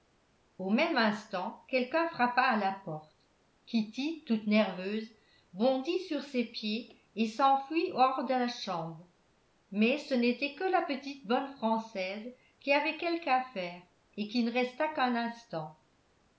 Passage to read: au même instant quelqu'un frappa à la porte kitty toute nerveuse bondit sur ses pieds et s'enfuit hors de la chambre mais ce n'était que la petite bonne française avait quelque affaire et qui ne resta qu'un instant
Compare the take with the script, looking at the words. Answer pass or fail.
fail